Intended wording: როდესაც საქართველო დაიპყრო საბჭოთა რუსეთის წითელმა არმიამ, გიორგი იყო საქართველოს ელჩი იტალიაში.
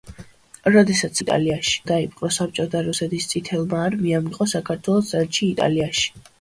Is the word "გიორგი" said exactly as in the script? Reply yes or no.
no